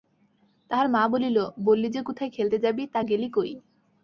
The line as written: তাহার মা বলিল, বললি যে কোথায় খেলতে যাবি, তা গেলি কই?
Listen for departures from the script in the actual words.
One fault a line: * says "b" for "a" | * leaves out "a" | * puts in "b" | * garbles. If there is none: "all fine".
all fine